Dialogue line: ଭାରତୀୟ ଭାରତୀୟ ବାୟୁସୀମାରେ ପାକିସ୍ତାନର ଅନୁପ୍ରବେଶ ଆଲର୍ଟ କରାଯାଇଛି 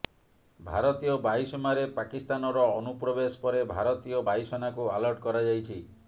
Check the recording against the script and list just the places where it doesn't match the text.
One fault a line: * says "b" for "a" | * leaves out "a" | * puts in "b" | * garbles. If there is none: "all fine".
* leaves out "ଭାରତୀୟ"
* puts in "ପରେ ଭାରତୀୟ ବାୟୁସେନାକୁ"